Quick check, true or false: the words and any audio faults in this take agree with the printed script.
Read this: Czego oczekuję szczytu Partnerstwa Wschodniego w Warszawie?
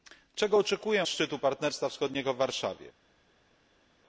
true